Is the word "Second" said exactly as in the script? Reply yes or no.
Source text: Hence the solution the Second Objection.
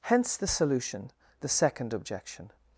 yes